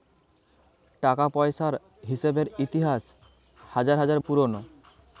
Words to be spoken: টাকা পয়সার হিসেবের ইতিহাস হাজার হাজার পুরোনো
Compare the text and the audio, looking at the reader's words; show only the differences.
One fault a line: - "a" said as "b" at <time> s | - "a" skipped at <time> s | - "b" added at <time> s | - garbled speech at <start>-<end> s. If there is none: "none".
none